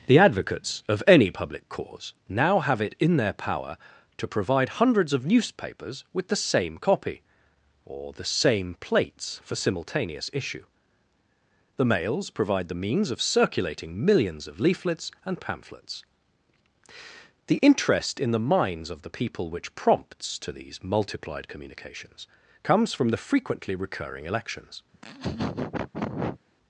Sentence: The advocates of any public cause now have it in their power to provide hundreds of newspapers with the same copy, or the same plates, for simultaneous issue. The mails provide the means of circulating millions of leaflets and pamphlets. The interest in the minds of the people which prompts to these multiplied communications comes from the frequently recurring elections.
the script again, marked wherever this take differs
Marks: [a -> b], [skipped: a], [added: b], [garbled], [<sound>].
The advocates of any public cause now have it in their power to provide hundreds of newspapers with the same copy, or the same plates, for simultaneous issue. The mails provide the means of circulating millions of leaflets and pamphlets. The interest in the minds of the people which prompts to these multiplied communications comes from the frequently recurring elections. [laugh]